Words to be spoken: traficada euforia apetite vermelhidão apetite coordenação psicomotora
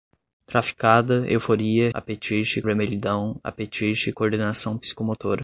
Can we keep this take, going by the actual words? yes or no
yes